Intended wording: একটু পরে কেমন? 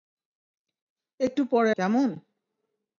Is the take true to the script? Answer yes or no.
yes